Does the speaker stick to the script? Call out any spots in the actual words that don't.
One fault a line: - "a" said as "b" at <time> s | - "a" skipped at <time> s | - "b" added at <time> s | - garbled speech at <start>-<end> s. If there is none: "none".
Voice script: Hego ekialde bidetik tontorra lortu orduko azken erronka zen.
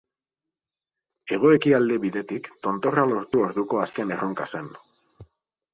none